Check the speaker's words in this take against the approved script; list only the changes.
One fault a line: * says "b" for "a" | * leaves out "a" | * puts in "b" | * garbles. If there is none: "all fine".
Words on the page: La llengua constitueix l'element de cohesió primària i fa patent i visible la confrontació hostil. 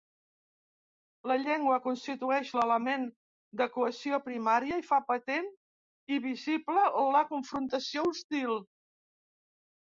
all fine